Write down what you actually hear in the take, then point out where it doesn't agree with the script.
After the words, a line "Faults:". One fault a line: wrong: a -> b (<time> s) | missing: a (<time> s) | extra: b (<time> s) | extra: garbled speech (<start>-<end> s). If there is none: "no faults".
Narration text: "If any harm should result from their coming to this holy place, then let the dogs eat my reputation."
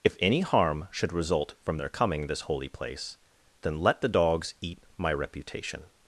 "If any harm should result from their coming this holy place, then let the dogs eat my reputation."
Faults:
missing: to (2.3 s)